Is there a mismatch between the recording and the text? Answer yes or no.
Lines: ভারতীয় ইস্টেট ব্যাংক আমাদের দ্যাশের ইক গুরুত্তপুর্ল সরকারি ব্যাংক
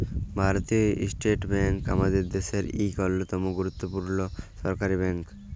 yes